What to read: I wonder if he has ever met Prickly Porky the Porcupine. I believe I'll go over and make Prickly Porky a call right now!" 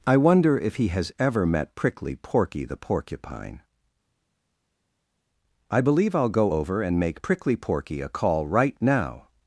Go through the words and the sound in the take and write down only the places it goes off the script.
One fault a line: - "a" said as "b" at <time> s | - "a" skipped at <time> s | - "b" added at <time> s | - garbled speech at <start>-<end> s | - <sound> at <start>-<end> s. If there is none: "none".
none